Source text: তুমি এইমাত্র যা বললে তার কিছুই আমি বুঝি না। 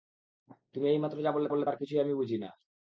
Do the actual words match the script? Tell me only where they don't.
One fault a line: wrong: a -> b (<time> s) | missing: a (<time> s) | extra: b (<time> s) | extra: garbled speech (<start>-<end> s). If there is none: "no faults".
extra: বললে (1.5 s)